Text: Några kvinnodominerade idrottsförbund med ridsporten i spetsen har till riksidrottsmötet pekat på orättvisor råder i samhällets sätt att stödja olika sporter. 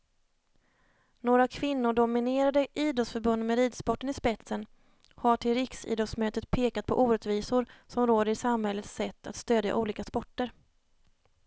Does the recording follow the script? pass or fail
fail